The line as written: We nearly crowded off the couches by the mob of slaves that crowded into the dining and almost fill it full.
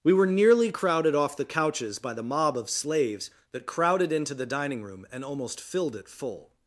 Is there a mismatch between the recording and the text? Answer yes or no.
yes